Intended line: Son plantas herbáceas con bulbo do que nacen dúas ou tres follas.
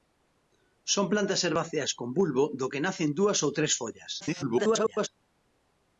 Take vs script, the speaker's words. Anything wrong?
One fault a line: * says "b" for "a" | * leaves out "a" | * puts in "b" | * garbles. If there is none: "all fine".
* garbles